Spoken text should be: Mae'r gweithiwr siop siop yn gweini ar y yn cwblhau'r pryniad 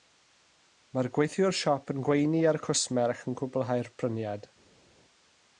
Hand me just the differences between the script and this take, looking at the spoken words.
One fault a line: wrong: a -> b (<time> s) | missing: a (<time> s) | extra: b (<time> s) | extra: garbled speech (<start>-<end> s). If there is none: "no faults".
missing: siop (1.9 s)
extra: cwsmer ac (2.7 s)